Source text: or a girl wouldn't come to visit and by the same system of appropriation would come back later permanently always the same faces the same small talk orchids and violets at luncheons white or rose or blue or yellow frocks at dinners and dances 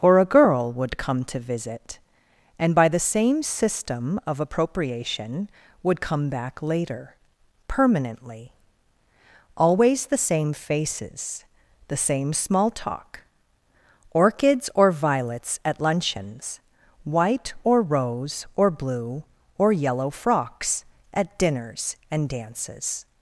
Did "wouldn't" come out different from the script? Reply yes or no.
yes